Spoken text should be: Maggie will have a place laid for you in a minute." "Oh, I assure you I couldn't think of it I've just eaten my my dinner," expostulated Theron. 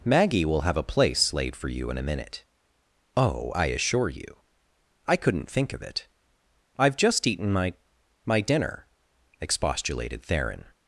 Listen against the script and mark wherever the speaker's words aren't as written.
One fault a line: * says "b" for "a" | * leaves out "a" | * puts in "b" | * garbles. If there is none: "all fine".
all fine